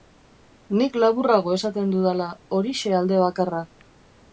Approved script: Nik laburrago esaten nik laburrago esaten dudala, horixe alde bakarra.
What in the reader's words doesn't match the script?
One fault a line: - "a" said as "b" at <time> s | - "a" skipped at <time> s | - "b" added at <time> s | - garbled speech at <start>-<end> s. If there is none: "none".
- "nik laburrago esaten" skipped at 1.9 s